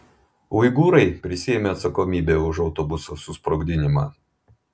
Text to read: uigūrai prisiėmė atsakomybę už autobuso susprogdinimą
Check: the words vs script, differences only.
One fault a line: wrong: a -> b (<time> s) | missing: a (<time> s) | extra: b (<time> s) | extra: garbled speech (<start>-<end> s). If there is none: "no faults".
no faults